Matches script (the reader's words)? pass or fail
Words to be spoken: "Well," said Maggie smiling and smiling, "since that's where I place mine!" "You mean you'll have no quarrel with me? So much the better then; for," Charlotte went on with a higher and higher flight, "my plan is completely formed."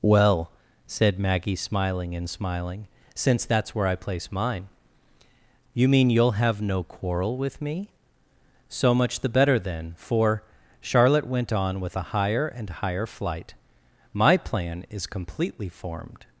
pass